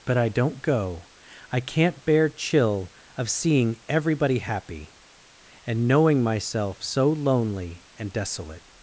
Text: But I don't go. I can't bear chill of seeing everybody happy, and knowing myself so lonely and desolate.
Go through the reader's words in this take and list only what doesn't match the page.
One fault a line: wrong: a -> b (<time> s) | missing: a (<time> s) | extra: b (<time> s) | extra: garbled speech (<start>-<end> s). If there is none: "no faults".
no faults